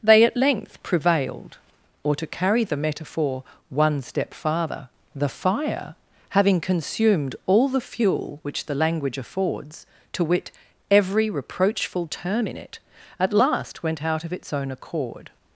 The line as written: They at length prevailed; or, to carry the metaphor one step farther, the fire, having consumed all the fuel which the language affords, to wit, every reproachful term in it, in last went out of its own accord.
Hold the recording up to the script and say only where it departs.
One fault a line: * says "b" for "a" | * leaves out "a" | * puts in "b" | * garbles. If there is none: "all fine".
* says "at" for "in"